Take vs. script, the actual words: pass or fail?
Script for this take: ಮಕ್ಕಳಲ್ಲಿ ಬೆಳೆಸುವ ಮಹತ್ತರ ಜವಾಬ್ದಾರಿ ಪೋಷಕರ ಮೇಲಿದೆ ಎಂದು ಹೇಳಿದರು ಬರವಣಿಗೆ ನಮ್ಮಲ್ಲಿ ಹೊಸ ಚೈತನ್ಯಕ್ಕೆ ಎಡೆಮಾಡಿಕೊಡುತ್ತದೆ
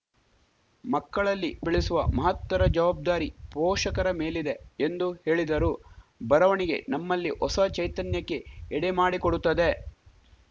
pass